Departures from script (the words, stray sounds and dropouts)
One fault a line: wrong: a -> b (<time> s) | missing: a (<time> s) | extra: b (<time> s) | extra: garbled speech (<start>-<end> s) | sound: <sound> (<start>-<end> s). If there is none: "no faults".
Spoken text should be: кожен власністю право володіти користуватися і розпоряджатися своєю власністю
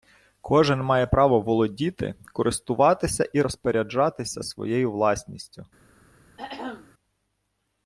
wrong: власністю -> має (0.8 s)
sound: throat clearing (6.4-6.9 s)